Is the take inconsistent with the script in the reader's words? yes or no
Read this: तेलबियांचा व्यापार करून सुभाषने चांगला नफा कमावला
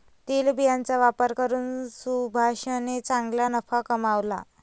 no